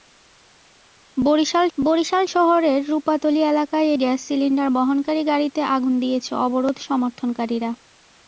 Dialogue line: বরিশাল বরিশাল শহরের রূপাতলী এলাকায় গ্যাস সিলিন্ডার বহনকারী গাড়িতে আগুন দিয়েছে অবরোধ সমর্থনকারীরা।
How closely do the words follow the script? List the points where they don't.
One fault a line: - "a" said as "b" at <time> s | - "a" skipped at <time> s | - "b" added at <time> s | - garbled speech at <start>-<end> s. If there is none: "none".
none